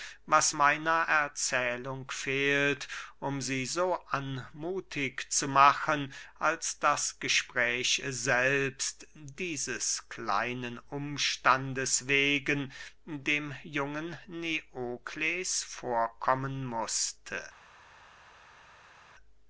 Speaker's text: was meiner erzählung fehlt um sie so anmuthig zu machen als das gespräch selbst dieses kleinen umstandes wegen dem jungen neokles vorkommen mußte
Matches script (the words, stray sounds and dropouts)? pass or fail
pass